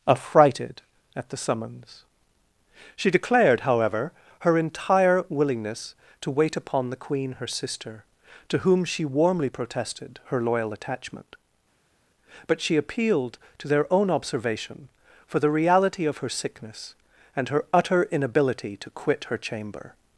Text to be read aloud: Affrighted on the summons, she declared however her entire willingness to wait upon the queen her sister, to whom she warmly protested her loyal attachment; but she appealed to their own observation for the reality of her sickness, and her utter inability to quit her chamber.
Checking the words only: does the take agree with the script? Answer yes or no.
no